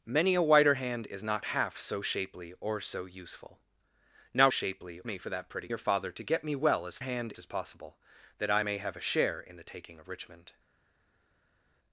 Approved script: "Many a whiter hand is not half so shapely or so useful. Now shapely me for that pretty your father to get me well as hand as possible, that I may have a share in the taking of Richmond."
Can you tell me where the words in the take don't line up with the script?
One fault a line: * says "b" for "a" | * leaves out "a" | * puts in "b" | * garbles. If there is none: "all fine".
all fine